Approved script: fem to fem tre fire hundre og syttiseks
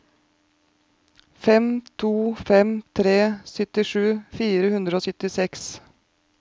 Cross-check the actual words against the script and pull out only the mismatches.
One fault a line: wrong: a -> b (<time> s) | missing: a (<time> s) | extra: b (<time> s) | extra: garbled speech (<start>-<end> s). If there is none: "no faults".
extra: syttisju (3.5 s)